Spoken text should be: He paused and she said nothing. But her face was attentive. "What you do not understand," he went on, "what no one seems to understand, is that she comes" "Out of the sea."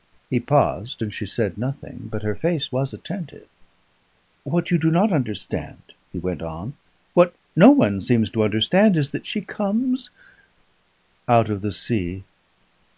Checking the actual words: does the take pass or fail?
pass